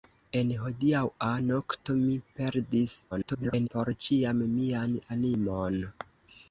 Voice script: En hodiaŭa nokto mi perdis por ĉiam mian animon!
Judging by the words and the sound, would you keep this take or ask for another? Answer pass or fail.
fail